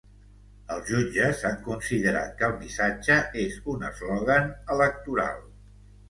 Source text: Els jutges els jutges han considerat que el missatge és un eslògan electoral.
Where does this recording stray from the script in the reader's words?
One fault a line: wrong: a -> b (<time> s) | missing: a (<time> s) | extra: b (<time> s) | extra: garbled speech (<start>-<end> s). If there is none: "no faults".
missing: els jutges (1.4 s)